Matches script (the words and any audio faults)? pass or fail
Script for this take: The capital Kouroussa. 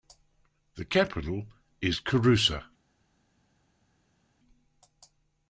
fail